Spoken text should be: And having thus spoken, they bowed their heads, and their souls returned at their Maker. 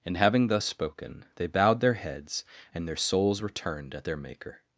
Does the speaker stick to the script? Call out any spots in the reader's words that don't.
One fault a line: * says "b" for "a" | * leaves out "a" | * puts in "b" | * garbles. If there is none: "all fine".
all fine